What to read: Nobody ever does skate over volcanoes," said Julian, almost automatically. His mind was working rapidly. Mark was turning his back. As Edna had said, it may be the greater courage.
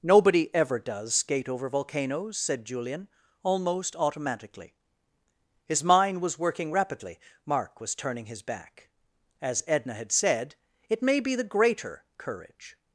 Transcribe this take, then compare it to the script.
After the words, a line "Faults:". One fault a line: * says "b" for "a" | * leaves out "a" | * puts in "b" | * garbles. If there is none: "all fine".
Nobody ever does skate over volcanoes," said Julian, almost automatically. His mind was working rapidly. Mark was turning his back. As Edna had said, it may be the greater courage.
Faults:
all fine